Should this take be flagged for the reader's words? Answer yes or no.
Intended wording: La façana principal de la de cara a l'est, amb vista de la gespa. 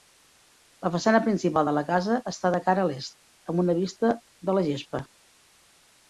yes